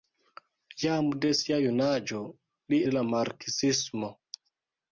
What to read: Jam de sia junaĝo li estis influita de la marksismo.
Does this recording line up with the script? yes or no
no